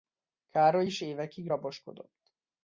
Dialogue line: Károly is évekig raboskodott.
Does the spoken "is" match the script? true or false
true